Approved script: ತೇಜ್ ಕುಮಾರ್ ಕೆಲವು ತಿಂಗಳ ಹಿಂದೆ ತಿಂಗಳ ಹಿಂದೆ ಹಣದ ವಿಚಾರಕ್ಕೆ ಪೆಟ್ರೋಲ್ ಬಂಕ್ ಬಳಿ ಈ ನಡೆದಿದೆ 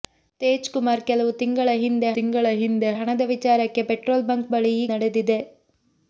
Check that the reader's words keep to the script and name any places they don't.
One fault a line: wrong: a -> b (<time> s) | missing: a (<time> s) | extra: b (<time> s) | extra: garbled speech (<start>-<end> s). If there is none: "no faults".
no faults